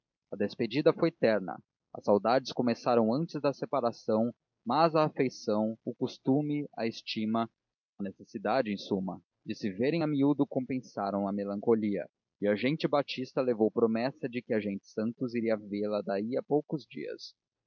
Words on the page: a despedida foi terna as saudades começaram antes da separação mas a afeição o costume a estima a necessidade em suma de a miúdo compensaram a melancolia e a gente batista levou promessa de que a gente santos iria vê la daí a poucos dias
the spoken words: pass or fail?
fail